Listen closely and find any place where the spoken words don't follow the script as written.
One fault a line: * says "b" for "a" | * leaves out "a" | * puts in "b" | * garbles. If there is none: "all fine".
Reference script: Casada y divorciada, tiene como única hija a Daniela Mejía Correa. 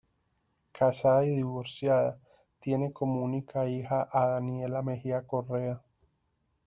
all fine